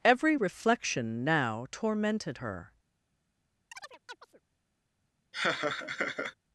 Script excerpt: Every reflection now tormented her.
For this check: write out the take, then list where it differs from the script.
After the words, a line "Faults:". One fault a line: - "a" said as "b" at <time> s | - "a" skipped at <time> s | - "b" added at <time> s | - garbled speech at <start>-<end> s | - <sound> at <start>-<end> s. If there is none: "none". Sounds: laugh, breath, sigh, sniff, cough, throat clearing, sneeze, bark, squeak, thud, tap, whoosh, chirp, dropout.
Every reflection now tormented her.
Faults:
- chirp at 3.7-4.4 s
- laugh at 5.3-6.3 s